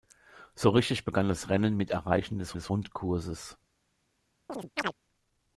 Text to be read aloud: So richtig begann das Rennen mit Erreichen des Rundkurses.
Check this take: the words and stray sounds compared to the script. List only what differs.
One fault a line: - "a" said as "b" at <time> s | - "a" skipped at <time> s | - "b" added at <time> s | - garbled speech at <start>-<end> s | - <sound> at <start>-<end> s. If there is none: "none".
- "des" added at 2.5 s
- chirp at 4.5-4.9 s